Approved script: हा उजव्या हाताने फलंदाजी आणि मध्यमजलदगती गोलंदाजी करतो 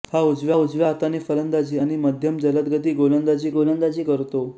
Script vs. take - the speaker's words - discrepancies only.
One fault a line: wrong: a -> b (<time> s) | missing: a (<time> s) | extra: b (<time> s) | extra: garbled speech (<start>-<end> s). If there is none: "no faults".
extra: उजव्या (0.5 s)
extra: गोलंदाजी (3.5 s)